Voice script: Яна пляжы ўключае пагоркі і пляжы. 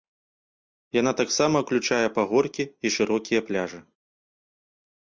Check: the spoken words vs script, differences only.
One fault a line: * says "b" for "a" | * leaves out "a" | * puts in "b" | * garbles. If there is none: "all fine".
* says "таксама" for "пляжы"
* puts in "шырокія"